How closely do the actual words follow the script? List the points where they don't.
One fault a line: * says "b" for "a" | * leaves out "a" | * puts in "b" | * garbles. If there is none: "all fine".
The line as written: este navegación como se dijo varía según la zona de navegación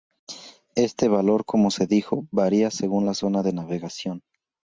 * says "valor" for "navegación"